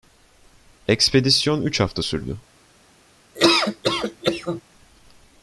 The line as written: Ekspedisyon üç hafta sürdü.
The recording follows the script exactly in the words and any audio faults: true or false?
false